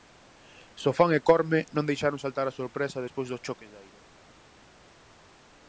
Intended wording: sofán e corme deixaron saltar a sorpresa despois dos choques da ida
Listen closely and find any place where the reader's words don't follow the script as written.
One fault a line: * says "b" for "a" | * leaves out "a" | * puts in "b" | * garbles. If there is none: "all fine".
* puts in "non"